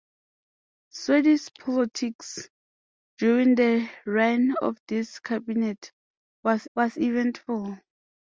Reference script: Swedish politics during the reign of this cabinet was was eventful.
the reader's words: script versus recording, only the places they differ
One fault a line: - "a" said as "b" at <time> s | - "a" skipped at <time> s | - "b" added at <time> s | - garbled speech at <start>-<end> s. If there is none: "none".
none